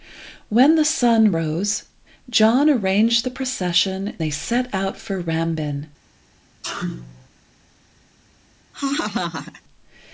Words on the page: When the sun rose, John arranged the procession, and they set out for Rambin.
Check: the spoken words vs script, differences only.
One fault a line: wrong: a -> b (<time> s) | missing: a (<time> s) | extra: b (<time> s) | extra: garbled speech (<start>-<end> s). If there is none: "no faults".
missing: and (4.1 s)